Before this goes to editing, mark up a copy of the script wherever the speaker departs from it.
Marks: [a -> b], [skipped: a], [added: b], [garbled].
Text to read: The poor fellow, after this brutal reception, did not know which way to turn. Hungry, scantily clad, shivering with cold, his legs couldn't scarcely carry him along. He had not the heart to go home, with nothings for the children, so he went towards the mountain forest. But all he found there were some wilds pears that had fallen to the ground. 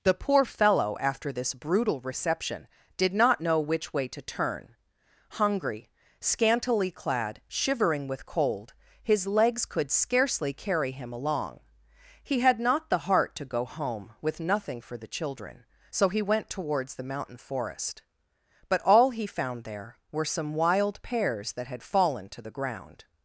The poor fellow, after this brutal reception, did not know which way to turn. Hungry, scantily clad, shivering with cold, his legs [couldn't -> could] scarcely carry him along. He had not the heart to go home, with [nothings -> nothing] for the children, so he went towards the mountain forest. But all he found there were some [wilds -> wild] pears that had fallen to the ground.